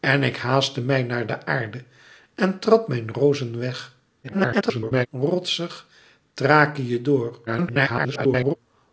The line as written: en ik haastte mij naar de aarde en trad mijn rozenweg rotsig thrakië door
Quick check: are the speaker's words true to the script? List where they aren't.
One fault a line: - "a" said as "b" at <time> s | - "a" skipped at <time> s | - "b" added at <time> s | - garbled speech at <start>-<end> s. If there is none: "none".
- garbled speech at 4.2-5.1 s
- garbled speech at 7.5-8.6 s